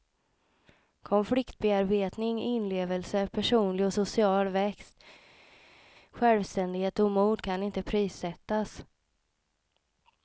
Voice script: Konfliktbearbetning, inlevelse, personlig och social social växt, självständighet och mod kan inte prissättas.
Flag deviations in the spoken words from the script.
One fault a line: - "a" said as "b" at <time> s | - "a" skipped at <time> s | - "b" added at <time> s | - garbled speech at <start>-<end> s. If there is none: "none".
- "social" skipped at 4.5 s